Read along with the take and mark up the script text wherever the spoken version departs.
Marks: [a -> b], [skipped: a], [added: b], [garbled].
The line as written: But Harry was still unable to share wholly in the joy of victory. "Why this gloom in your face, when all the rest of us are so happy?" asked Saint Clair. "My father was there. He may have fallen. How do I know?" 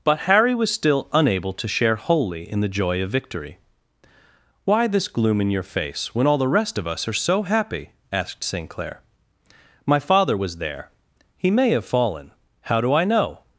But Harry was still unable to share wholly in the joy of victory. "Why this gloom in your face, when all the rest of us are so happy?" asked Saint Clair. "My father was there. He may have fallen. How do I know?"